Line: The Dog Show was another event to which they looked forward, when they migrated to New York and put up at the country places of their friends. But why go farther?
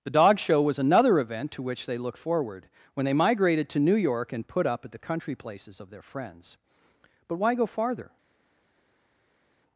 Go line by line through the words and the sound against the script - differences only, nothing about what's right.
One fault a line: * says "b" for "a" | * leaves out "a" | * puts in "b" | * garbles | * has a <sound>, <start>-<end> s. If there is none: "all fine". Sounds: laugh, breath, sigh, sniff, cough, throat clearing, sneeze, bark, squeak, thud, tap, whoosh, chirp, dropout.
all fine